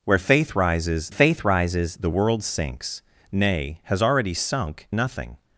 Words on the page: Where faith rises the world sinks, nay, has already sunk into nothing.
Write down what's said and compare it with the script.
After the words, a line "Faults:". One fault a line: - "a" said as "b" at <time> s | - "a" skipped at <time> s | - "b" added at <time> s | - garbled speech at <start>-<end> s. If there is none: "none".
Where faith rises faith rises the world sinks, nay, has already sunk nothing.
Faults:
- "faith rises" added at 1.1 s
- "into" skipped at 4.9 s